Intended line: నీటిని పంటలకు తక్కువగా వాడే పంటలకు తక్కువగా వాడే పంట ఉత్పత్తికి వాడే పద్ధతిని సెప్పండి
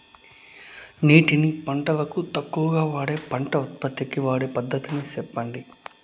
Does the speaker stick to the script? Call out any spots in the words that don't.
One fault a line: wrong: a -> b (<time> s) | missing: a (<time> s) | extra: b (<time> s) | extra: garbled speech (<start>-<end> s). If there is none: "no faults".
missing: పంటలకు తక్కువగా వాడే (3.2 s)